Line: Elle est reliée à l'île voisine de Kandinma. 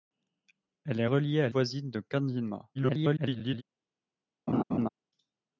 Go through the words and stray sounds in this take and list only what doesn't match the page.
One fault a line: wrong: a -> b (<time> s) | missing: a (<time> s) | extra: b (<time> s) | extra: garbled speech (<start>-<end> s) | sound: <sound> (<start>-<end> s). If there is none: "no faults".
missing: l'île (1.5 s)
extra: garbled speech (2.7-3.6 s)
sound: laugh (4.5-4.9 s)